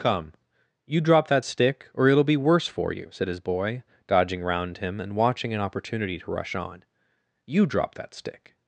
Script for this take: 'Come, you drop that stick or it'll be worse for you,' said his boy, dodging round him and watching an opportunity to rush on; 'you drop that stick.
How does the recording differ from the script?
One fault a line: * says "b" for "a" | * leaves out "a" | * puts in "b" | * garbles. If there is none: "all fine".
all fine